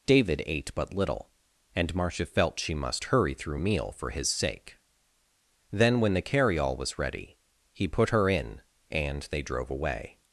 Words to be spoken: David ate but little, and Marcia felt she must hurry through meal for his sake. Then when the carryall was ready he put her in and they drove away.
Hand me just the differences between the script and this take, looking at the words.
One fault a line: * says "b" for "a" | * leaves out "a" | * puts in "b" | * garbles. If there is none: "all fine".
all fine